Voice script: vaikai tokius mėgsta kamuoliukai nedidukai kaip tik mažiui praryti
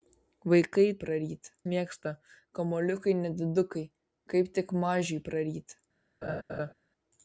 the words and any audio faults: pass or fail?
fail